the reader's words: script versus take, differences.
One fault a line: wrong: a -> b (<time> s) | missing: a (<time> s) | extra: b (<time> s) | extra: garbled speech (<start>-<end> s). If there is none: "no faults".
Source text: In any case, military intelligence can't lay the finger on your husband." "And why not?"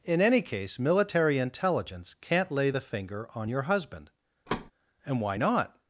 no faults